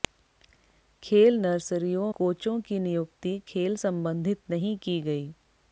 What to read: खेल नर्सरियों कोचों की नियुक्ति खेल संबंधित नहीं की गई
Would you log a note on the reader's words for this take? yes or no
no